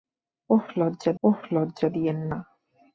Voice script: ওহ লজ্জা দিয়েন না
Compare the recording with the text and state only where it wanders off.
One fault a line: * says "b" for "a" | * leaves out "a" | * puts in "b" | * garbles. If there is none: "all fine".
* puts in "ওহ লজ্জা"